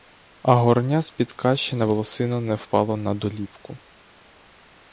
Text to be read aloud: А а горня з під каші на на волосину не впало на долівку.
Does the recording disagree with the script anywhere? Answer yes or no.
yes